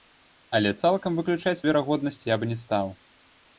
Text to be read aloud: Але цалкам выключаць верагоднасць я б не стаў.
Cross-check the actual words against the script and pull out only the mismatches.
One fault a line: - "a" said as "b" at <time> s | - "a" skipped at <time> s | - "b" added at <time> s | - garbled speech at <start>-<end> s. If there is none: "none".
none